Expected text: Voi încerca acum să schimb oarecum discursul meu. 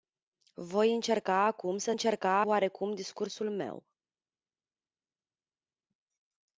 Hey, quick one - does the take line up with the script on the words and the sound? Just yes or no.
no